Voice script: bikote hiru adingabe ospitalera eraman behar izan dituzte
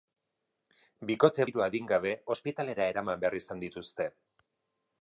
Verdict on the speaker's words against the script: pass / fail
pass